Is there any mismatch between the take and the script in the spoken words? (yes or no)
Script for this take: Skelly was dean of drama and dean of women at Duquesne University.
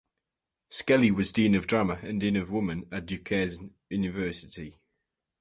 no